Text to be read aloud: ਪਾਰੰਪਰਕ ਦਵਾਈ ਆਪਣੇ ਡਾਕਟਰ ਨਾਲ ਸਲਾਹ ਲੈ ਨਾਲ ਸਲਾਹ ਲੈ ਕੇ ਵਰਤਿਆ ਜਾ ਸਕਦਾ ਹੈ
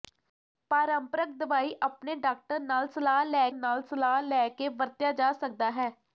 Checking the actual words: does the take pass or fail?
pass